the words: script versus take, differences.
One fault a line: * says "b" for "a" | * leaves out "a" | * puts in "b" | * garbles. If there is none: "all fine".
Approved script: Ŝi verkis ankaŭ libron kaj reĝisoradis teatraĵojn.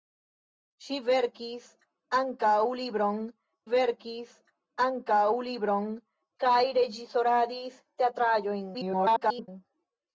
* puts in "verkis ankaŭ libron"
* garbles